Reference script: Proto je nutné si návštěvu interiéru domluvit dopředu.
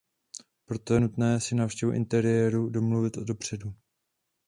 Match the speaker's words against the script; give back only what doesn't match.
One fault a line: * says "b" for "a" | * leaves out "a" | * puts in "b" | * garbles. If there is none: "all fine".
all fine